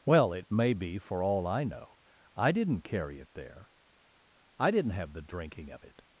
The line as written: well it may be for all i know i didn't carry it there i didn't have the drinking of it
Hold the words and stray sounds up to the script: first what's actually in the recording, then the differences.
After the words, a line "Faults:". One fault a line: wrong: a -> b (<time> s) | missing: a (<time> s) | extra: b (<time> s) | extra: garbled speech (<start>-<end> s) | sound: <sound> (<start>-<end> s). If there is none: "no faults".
well it may be for all i know i didn't carry it there i didn't have the drinking of it
Faults:
no faults